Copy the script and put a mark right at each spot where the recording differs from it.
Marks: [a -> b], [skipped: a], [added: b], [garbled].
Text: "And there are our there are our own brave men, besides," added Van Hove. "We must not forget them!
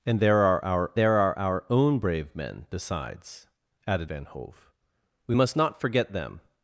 "And there are our there are our own brave men, besides," added Van Hove. "We must not forget them!